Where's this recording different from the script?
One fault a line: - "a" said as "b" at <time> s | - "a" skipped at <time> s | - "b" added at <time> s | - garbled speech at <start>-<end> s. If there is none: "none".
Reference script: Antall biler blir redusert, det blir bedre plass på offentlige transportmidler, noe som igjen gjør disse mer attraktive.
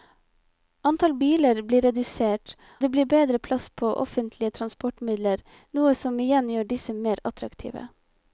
none